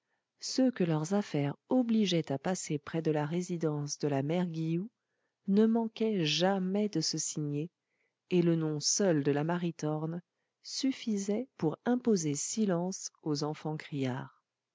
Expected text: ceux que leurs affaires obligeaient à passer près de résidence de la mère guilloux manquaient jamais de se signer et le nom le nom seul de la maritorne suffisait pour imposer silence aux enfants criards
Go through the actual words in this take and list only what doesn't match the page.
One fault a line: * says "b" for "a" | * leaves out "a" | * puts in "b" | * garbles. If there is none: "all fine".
* puts in "la"
* puts in "ne"
* leaves out "le nom"